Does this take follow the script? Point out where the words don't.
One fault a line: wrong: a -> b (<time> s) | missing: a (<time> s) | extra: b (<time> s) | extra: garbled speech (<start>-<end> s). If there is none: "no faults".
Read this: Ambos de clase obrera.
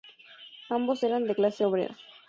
extra: eran (1.0 s)